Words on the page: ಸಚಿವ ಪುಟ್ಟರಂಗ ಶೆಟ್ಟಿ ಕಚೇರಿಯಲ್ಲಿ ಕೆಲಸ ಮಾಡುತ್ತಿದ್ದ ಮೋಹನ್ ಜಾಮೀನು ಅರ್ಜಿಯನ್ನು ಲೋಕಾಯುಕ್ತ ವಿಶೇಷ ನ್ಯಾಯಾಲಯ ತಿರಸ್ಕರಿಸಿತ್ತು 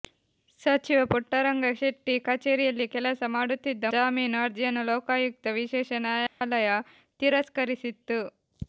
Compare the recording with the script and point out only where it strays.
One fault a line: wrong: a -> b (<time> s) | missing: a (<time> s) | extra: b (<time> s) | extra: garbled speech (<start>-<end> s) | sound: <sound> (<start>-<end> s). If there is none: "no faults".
missing: ಮೋಹನ್ (3.9 s)
sound: dropout (6.3-6.4 s)